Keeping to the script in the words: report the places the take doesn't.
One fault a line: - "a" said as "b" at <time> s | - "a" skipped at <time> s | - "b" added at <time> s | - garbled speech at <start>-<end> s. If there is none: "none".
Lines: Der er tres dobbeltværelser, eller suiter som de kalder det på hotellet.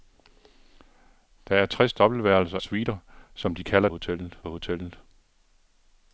- "eller" skipped at 2.6 s
- "det" said as "hotellet" at 3.9 s